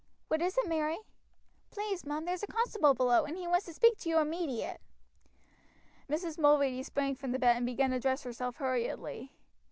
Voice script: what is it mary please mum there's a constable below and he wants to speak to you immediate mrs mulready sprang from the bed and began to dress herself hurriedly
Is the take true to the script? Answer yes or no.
yes